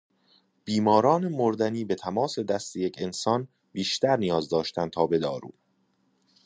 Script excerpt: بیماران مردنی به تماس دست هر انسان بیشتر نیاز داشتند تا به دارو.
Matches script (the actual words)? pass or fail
fail